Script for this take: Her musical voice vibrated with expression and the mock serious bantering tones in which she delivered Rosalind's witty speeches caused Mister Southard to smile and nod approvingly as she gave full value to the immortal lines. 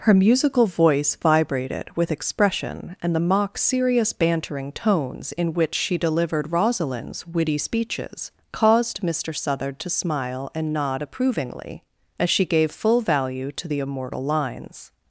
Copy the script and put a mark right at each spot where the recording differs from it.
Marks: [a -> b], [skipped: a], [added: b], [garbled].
Her musical voice vibrated with expression and the mock serious bantering tones in which she delivered Rosalind's witty speeches caused Mister Southard to smile and nod approvingly as she gave full value to the immortal lines.